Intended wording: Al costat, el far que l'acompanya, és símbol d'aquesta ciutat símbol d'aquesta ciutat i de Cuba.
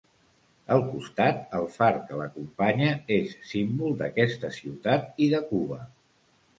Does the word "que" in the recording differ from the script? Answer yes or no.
no